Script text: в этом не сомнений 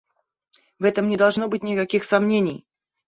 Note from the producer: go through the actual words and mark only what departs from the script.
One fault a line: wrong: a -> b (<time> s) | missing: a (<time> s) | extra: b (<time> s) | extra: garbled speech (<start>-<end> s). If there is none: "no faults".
extra: должно быть никаких (1.2 s)